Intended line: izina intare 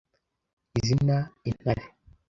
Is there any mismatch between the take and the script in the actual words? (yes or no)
no